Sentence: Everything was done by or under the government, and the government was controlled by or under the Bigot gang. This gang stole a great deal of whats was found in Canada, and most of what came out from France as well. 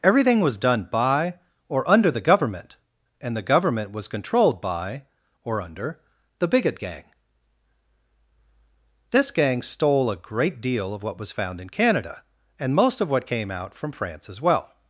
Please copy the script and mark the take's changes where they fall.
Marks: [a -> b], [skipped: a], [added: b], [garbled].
Everything was done by or under the government, and the government was controlled by or under the Bigot gang. This gang stole a great deal of [whats -> what] was found in Canada, and most of what came out from France as well.